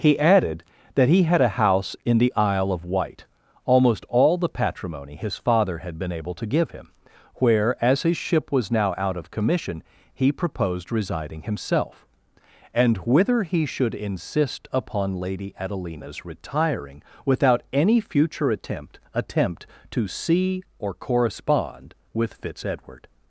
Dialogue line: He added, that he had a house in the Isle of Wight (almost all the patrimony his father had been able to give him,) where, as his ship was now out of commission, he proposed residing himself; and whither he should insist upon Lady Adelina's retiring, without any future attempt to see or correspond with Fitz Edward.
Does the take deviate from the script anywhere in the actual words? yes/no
yes